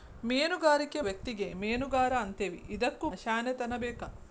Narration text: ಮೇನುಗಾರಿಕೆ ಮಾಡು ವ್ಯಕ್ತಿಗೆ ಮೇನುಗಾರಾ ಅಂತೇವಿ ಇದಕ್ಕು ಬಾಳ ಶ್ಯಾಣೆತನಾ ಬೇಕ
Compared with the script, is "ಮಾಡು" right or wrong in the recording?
wrong